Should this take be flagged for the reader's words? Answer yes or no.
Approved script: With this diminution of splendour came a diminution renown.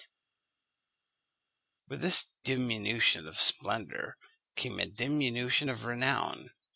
yes